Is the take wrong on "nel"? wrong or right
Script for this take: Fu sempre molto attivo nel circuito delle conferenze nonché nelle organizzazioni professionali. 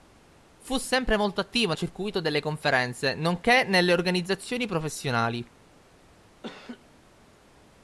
wrong